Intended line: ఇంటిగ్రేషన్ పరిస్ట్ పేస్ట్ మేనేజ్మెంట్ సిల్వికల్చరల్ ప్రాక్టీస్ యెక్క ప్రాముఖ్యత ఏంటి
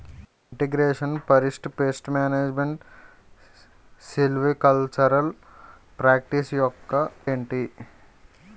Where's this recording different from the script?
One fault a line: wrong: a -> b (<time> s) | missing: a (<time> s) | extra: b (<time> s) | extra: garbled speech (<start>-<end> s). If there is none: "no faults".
missing: ప్రాముఖ్యత (7.0 s)